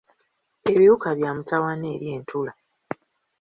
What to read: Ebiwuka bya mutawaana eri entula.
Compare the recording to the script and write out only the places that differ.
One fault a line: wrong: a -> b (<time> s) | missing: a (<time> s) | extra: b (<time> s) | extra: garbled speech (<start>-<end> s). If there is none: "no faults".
no faults